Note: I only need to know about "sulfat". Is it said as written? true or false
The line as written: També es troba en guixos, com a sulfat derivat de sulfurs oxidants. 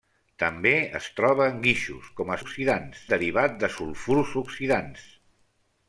false